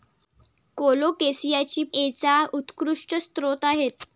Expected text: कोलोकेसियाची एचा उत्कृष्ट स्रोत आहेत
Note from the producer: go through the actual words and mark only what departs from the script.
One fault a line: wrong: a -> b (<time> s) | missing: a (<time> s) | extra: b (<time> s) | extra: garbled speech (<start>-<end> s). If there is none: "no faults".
no faults